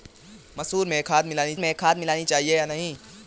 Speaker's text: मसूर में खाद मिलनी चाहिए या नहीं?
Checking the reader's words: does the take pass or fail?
fail